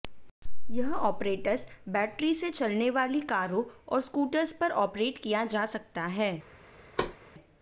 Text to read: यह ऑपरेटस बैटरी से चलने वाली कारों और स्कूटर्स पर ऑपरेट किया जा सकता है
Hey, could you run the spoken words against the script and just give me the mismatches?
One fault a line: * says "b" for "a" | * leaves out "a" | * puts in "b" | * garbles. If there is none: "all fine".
all fine